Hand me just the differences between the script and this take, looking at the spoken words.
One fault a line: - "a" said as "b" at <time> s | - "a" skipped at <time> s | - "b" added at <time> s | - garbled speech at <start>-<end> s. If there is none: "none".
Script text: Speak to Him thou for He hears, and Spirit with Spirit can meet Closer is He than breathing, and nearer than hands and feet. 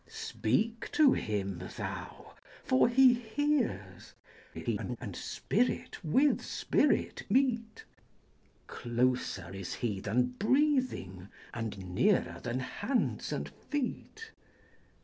- garbled speech at 4.5-5.0 s
- "can" skipped at 7.3 s